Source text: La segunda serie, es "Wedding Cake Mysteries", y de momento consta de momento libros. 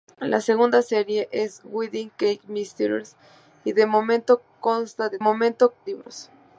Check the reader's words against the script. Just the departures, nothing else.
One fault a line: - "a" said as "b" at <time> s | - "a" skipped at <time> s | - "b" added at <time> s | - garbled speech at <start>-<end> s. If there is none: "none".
none